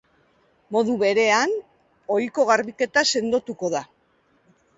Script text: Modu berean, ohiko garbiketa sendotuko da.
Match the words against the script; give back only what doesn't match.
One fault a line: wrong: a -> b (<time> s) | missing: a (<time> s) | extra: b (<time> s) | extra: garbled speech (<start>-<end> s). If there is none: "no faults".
no faults